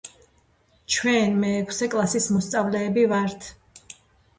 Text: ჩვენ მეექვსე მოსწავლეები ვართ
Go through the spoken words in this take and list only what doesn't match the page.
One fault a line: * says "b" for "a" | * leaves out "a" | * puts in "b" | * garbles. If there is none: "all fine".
* puts in "კლასის"